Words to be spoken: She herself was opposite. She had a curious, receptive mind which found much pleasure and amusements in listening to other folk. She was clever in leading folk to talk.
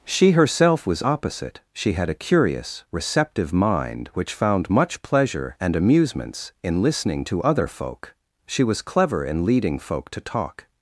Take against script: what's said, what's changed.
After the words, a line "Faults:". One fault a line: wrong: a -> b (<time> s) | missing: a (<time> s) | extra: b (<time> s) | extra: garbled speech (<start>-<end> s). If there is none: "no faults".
She herself was opposite. She had a curious, receptive mind which found much pleasure and amusements in listening to other folk. She was clever in leading folk to talk.
Faults:
no faults